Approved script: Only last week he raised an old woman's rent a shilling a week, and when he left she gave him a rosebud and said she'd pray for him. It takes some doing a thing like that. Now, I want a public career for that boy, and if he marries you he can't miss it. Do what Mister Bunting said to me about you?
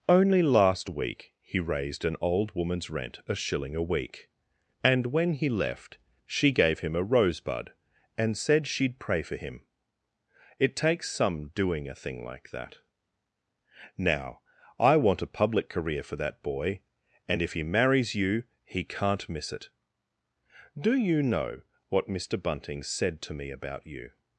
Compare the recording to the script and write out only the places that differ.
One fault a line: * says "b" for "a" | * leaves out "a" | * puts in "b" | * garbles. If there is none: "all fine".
* puts in "you know"